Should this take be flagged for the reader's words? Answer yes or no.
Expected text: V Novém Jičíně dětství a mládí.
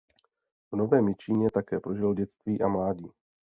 yes